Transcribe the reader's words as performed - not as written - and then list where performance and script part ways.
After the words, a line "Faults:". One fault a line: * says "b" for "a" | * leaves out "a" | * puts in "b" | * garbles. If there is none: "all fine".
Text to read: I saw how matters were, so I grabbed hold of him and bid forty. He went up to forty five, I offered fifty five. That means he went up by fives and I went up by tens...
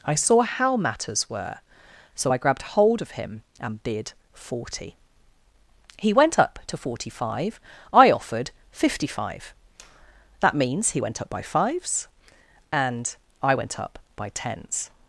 I saw how matters were, so I grabbed hold of him and bid forty. He went up to forty five, I offered fifty five. That means he went up by fives and I went up by tens...
Faults:
all fine